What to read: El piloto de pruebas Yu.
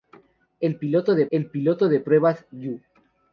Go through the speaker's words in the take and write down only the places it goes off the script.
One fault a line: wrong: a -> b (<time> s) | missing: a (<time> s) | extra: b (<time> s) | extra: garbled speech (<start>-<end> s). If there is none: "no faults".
extra: el piloto de (1.3 s)